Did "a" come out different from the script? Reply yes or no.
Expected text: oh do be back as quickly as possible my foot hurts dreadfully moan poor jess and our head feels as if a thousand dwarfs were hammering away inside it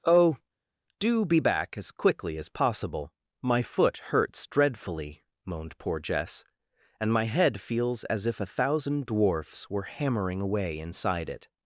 no